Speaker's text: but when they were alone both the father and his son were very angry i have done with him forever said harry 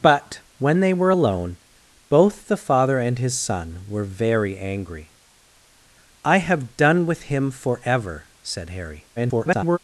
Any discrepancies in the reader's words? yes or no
yes